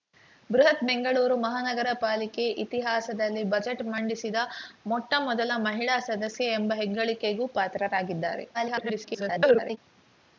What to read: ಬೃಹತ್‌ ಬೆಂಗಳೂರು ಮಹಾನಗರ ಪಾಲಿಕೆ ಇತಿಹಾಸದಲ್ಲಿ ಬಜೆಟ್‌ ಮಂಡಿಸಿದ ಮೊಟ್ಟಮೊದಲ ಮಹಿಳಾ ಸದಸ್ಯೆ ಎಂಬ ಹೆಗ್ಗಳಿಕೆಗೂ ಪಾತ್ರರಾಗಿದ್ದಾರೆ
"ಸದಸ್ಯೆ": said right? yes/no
yes